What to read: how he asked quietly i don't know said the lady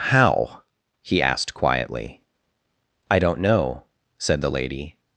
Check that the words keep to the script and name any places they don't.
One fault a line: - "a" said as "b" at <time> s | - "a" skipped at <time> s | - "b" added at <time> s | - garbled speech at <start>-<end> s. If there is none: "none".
none